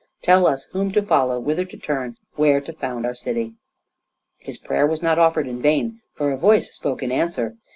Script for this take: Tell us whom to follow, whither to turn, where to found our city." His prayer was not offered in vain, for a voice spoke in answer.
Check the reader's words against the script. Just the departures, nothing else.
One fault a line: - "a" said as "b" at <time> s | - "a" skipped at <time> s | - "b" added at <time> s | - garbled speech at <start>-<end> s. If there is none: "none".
none